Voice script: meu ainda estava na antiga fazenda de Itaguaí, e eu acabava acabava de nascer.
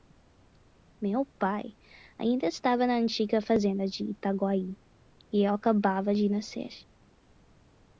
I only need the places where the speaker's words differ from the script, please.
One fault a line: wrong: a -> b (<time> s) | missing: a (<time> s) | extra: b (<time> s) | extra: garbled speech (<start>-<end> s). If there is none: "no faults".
extra: pai (1.4 s)
missing: acabava (6.1 s)